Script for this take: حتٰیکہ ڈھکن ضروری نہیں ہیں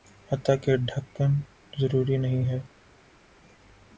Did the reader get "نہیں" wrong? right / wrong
right